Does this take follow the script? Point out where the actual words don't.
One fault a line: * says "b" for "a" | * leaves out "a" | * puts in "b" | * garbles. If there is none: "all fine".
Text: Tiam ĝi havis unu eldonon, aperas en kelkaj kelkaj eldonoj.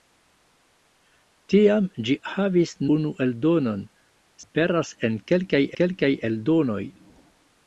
all fine